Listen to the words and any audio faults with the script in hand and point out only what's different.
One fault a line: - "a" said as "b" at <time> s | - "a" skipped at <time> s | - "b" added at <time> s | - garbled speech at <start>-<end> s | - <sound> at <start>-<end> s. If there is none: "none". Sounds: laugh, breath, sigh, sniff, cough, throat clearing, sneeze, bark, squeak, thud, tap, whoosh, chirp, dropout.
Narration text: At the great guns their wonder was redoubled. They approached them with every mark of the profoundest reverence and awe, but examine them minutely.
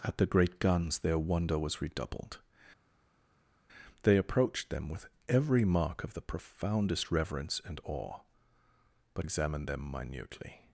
none